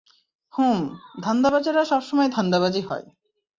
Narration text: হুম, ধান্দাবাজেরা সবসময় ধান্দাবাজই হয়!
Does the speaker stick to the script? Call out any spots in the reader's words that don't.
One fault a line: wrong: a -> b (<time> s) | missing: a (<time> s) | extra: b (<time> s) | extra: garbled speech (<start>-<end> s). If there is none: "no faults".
no faults